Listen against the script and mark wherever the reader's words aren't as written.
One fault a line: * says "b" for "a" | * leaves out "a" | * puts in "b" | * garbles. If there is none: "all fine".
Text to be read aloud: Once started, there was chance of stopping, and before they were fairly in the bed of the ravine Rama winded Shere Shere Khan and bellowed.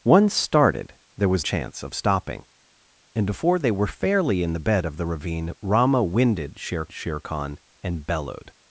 all fine